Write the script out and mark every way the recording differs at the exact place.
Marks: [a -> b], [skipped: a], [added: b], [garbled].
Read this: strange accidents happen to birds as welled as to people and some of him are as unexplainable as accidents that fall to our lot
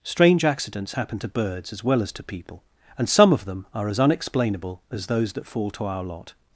strange accidents happen to birds as [welled -> well] as to people and some of [him -> them] are as unexplainable as [accidents -> those] that fall to our lot